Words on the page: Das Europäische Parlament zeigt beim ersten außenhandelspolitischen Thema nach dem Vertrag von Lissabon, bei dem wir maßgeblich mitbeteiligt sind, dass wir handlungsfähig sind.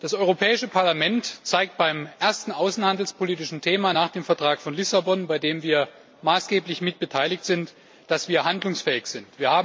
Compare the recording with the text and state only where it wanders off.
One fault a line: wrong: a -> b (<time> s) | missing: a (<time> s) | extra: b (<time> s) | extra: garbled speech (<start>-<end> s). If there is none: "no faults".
no faults